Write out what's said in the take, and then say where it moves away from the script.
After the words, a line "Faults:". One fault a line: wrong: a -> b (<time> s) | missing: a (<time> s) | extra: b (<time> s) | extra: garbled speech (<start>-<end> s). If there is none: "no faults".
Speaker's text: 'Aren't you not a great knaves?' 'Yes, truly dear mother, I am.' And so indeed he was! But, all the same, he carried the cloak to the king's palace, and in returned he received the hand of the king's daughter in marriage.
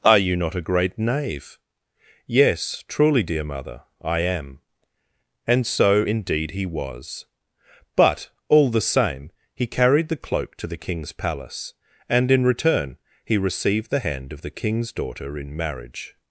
'Are you not a great knave?' 'Yes, truly dear mother, I am.' And so indeed he was! But, all the same, he carried the cloak to the king's palace, and in return he received the hand of the king's daughter in marriage.
Faults:
wrong: Aren't -> Are (0.0 s)
wrong: knaves -> knave (1.0 s)
wrong: returned -> return (12.4 s)